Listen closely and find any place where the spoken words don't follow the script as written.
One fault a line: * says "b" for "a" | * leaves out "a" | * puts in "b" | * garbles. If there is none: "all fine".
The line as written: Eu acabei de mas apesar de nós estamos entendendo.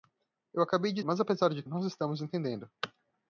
all fine